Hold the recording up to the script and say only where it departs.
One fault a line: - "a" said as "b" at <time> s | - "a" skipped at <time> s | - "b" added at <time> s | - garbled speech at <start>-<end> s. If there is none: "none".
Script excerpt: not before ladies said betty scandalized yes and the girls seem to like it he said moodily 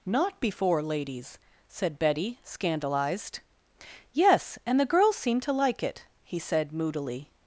none